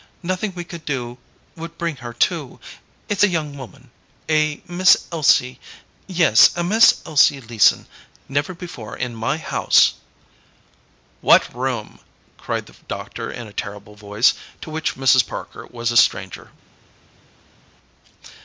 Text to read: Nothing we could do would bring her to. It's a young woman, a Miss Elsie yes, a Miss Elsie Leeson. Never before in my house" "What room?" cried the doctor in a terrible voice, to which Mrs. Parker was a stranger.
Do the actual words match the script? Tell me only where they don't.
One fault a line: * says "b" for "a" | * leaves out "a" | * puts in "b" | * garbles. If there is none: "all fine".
all fine